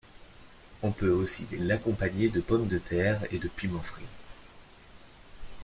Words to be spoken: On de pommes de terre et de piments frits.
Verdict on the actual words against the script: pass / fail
fail